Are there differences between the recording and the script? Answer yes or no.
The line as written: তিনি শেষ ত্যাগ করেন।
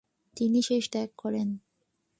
no